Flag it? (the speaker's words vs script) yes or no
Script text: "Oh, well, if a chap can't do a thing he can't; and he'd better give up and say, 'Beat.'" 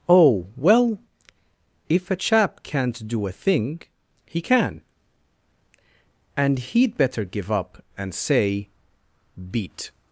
yes